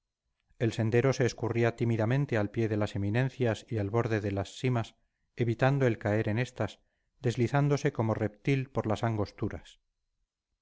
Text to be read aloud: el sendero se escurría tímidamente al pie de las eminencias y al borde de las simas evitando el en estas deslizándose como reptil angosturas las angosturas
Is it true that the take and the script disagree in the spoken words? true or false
true